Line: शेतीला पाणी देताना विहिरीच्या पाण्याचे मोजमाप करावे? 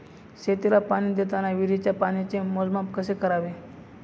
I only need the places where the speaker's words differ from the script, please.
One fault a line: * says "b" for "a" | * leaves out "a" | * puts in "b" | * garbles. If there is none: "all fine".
* puts in "कसे"